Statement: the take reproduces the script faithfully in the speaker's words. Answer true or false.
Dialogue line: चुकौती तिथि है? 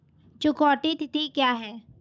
false